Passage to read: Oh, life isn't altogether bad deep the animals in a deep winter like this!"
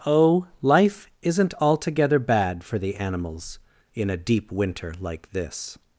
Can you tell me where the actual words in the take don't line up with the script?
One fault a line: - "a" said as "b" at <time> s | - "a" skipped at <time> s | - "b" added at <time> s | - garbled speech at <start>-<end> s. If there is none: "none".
- "deep" said as "for" at 2.6 s